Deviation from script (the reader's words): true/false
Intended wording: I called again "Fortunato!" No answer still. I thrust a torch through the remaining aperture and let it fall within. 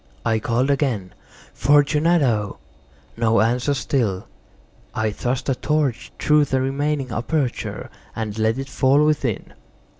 false